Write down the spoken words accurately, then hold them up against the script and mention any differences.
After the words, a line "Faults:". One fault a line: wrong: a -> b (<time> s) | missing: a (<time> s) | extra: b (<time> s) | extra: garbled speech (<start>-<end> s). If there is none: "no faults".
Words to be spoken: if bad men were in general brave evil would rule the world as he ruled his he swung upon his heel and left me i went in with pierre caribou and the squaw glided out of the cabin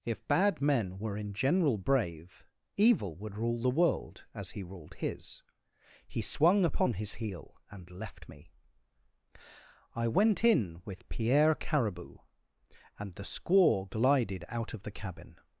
if bad men were in general brave evil would rule the world as he ruled his he swung upon his heel and left me i went in with pierre caribou and the squaw glided out of the cabin
Faults:
no faults